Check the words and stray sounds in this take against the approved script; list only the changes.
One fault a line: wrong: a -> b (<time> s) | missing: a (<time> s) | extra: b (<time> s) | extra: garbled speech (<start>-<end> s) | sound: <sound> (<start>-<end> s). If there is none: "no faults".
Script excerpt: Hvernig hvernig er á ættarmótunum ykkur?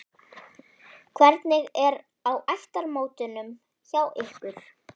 missing: hvernig (1.7 s)
extra: hjá (3.9 s)